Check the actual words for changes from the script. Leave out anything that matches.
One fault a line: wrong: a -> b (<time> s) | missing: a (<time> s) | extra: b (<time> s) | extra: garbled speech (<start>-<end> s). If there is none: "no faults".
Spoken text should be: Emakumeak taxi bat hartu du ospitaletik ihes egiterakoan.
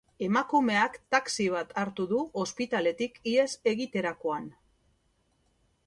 no faults